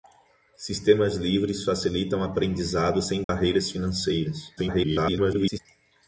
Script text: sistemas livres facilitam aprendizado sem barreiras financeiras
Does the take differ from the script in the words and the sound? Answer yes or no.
yes